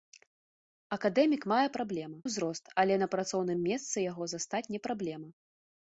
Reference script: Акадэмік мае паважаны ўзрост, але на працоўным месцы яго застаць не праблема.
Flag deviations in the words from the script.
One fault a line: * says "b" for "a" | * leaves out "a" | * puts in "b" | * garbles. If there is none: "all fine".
* says "праблема" for "паважаны"